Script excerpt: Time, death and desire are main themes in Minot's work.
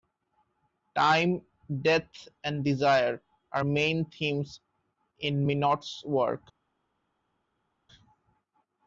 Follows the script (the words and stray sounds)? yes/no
yes